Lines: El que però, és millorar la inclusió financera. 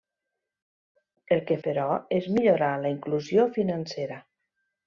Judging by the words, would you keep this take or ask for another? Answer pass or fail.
pass